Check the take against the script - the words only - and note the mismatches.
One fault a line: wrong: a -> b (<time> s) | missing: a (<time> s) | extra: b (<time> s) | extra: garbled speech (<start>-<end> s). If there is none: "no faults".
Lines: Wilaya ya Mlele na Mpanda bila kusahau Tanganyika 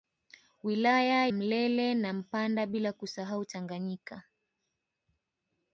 missing: ya (1.3 s)